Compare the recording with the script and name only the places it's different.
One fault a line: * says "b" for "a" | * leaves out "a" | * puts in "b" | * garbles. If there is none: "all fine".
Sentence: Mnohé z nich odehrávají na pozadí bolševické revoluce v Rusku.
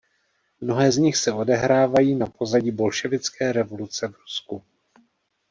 * puts in "se"